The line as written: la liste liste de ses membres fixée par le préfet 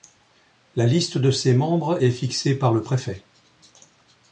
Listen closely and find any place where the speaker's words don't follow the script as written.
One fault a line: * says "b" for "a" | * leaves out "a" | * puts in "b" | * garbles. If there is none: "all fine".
* leaves out "liste"
* puts in "est"